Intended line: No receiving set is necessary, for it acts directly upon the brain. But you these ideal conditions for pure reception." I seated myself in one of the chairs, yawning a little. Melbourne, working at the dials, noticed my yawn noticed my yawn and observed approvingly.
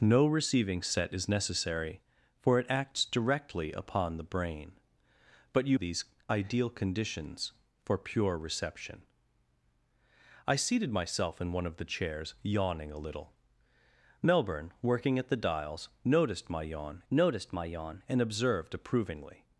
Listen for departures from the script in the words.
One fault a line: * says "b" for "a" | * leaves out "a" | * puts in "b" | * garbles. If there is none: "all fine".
all fine